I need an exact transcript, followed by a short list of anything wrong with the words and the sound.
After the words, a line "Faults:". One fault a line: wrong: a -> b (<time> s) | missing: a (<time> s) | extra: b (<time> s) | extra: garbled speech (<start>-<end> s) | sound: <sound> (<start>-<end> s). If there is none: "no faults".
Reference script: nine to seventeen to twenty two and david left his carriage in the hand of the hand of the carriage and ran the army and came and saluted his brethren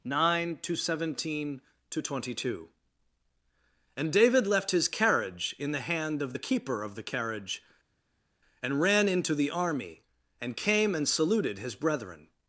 nine to seventeen to twenty two and david left his carriage in the hand of the keeper of the carriage and ran into the army and came and saluted his brethren
Faults:
wrong: hand -> keeper (6.4 s)
extra: into (9.1 s)